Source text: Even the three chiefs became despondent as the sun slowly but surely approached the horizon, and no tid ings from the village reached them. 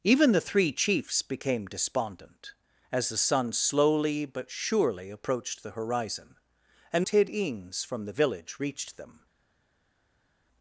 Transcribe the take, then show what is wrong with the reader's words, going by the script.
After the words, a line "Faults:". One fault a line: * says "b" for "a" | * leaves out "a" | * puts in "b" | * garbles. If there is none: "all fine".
Even the three chiefs became despondent as the sun slowly but surely approached the horizon, and tid ings from the village reached them.
Faults:
* leaves out "no"